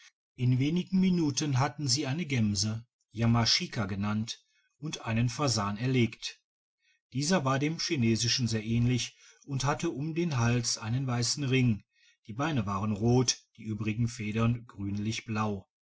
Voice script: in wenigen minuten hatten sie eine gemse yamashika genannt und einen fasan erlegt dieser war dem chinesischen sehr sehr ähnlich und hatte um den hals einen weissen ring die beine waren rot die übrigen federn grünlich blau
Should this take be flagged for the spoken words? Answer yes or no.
yes